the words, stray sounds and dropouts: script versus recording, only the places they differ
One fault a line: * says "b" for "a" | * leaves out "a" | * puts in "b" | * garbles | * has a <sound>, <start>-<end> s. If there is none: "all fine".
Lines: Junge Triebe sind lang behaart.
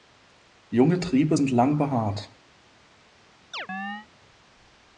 * has a chirp, 3.5-4.1 s